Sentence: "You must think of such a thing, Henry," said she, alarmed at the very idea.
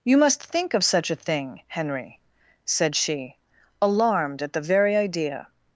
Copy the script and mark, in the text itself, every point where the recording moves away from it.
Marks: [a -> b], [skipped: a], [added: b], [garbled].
"You must think of such a thing, Henry," said she, alarmed at the very idea.